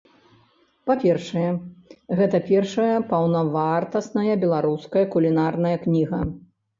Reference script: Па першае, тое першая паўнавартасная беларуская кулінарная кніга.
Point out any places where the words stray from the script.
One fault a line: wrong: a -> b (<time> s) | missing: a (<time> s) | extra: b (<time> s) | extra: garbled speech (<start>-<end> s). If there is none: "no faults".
wrong: тое -> гэта (2.2 s)